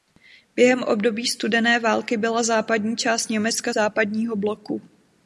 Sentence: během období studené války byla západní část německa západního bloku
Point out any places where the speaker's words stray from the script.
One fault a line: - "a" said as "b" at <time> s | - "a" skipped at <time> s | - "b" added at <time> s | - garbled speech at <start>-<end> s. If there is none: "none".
none